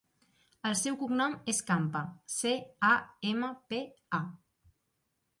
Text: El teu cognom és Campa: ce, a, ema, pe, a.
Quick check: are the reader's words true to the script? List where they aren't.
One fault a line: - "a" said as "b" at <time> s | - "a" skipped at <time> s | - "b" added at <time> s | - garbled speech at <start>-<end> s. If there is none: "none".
- "teu" said as "seu" at 0.8 s